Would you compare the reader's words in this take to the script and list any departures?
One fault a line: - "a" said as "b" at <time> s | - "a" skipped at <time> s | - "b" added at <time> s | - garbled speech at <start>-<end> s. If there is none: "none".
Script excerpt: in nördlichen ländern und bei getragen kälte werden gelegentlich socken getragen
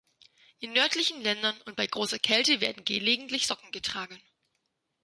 - "getragen" said as "großer" at 1.9 s